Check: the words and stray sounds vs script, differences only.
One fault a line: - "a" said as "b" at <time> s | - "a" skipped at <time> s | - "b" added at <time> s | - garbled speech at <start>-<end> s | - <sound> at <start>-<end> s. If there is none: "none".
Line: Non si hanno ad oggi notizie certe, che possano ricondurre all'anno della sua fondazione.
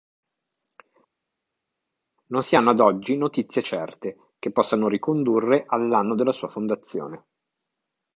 none